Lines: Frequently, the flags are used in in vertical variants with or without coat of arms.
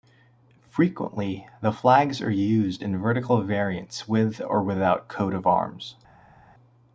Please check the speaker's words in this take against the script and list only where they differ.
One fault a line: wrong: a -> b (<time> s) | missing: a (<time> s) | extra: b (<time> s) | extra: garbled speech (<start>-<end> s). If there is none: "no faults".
missing: in (3.0 s)